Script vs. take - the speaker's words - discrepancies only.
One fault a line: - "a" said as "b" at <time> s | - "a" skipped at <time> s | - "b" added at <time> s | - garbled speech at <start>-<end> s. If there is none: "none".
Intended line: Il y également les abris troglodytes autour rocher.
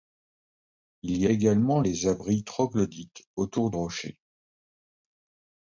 none